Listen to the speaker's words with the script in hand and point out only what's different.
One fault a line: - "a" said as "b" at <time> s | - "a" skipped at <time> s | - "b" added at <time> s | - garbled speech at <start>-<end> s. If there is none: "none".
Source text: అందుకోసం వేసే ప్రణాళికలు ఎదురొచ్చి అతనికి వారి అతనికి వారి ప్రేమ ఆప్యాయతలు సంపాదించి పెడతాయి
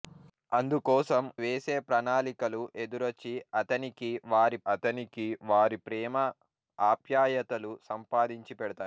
none